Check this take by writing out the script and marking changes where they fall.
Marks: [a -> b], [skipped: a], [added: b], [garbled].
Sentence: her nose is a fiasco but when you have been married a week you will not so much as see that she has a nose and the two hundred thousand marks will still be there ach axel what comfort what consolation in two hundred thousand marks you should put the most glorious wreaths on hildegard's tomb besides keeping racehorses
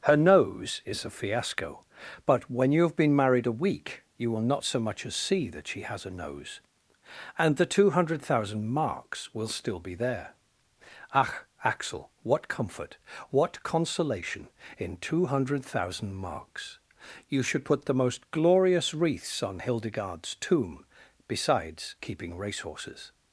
her nose is a fiasco but when you have been married a week you will not so much as see that she has a nose and the two hundred thousand marks will still be there ach axel what comfort what consolation in two hundred thousand marks you should put the most glorious wreaths on hildegard's tomb besides keeping racehorses